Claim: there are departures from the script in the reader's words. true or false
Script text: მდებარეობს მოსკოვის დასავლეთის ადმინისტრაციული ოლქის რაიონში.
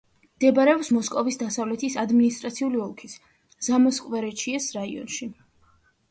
true